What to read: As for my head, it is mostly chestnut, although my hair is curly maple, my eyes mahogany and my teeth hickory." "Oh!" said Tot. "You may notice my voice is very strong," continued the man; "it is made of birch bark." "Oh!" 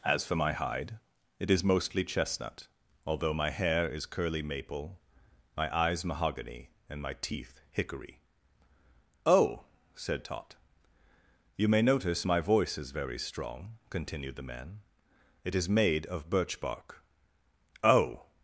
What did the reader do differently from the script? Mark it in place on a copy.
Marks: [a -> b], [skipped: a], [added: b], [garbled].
As for my [head, -> hide] it is mostly chestnut, although my hair is curly maple, my eyes mahogany and my teeth hickory." "Oh!" said Tot. "You may notice my voice is very strong," continued the man; "it is made of birch bark." "Oh!"